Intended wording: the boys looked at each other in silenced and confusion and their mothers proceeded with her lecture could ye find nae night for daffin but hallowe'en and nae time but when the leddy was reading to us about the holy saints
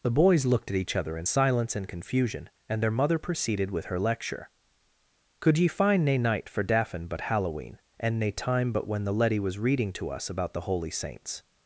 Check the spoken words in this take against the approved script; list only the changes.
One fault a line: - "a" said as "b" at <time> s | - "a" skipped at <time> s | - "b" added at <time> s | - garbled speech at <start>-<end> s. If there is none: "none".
- "silenced" said as "silence" at 1.2 s
- "mothers" said as "mother" at 2.9 s